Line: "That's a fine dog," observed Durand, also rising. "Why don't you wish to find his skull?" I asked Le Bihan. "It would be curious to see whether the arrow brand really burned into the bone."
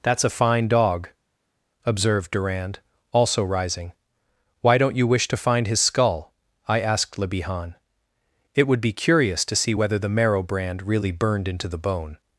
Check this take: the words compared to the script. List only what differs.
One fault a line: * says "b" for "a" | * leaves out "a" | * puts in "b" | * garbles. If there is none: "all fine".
* says "marrow" for "arrow"